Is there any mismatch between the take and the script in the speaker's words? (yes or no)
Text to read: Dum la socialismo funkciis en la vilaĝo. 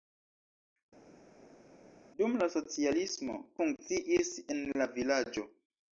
no